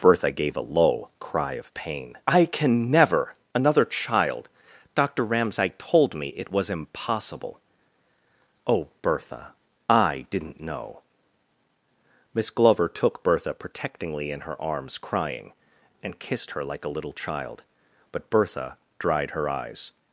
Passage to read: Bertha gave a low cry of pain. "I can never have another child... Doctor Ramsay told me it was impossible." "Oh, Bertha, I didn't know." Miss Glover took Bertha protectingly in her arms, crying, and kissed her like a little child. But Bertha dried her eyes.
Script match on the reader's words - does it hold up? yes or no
no